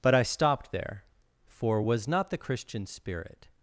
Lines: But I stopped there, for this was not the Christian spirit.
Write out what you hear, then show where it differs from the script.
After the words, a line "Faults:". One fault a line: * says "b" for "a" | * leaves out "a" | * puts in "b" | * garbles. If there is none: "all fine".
But I stopped there, for was not the Christian spirit.
Faults:
* leaves out "this"